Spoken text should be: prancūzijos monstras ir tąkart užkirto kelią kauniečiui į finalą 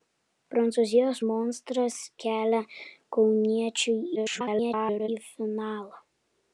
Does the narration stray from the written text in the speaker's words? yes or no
yes